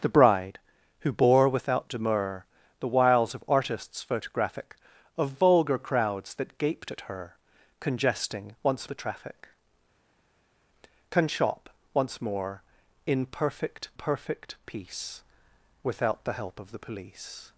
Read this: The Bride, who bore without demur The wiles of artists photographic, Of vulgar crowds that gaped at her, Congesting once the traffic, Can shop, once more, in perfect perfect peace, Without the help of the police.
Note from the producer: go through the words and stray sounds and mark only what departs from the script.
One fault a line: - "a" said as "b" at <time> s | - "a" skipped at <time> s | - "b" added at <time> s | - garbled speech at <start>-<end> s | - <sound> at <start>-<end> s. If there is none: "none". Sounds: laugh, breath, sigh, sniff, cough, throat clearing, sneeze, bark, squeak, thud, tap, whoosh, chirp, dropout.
none